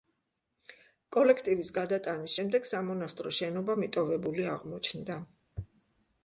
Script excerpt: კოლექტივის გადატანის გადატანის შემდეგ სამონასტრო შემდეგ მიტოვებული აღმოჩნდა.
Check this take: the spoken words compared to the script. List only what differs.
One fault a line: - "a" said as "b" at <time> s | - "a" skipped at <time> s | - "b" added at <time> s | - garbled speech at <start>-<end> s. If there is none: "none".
- "გადატანის" skipped at 2.4 s
- "შემდეგ" said as "შენობა" at 3.4 s